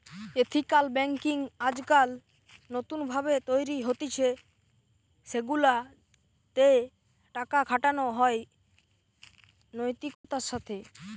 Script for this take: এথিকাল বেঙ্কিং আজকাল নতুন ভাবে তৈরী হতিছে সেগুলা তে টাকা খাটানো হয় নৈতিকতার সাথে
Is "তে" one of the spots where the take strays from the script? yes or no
no